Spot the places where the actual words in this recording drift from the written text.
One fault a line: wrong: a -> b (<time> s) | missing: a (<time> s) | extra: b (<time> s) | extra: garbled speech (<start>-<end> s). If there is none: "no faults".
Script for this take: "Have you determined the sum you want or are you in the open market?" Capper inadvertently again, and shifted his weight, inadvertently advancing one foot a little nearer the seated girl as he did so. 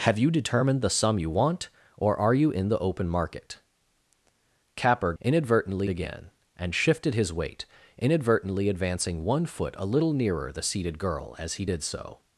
no faults